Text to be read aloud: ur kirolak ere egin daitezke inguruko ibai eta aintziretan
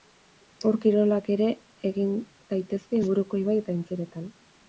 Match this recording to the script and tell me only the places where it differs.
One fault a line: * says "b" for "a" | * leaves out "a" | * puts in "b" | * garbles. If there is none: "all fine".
all fine